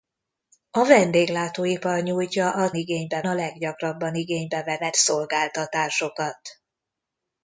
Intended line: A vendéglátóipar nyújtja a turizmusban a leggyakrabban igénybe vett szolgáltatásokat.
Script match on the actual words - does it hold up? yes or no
no